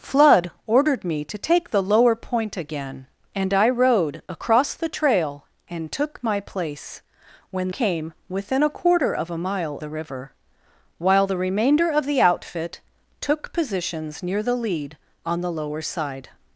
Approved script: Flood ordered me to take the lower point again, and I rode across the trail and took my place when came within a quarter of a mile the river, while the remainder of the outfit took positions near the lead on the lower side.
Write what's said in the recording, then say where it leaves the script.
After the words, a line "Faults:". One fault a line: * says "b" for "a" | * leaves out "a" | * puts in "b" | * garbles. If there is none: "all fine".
Flood ordered me to take the lower point again, and I rode across the trail and took my place when came within a quarter of a mile the river, while the remainder of the outfit took positions near the lead on the lower side.
Faults:
all fine